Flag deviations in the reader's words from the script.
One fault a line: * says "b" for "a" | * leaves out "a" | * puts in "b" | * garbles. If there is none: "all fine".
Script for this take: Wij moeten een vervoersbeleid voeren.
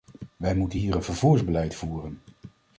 * puts in "hier"